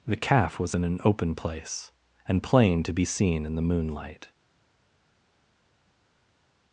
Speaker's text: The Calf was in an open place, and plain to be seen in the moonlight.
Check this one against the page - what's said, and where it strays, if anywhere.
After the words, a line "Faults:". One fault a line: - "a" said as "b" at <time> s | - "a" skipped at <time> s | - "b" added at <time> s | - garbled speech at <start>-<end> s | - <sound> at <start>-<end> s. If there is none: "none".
The Calf was in an open place, and plain to be seen in the moonlight.
Faults:
none